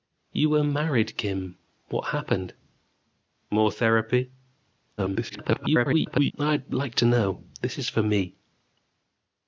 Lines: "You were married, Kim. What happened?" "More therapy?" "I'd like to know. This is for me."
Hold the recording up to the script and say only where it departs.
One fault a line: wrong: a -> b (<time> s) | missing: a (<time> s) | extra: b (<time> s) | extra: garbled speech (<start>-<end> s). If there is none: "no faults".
extra: garbled speech (5.0-6.3 s)